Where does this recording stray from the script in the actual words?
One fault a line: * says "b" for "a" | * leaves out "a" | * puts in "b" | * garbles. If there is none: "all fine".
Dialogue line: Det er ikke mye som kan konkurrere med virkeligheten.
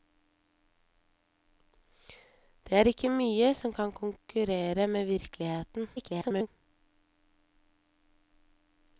* garbles